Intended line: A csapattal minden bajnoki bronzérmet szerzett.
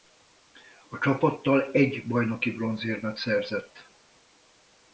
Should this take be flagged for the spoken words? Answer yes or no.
yes